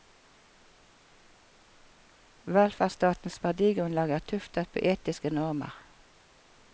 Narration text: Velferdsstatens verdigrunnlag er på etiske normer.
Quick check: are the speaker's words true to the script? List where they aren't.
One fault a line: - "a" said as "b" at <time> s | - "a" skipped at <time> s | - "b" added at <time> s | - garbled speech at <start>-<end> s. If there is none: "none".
- "tuftet" added at 4.3 s